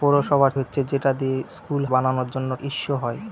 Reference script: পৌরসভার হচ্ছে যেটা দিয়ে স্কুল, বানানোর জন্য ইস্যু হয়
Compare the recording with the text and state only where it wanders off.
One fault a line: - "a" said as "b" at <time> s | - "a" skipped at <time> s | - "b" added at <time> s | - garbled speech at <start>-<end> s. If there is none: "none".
none